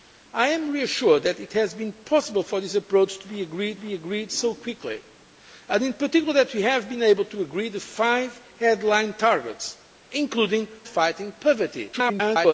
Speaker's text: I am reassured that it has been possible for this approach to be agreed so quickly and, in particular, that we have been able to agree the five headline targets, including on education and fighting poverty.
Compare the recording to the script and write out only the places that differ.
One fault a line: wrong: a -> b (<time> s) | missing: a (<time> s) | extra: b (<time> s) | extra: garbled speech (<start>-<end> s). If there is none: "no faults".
extra: be agreed (3.8 s)
missing: on education and (10.7 s)
extra: garbled speech (11.9-12.5 s)